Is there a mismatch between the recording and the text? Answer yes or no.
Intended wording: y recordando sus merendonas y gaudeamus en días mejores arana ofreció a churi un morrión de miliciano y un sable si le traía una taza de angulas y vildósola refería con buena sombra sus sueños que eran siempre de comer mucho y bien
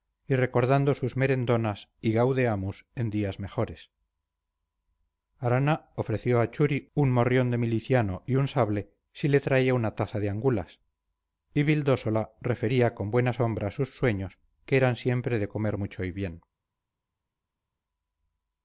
no